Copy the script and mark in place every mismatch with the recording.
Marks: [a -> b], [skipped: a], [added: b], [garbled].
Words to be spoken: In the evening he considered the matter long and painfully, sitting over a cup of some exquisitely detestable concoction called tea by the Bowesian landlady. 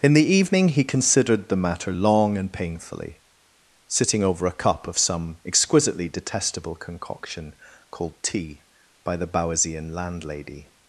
In the evening he considered the matter long and painfully, sitting over a cup of some exquisitely detestable concoction called tea by the Bowesian landlady.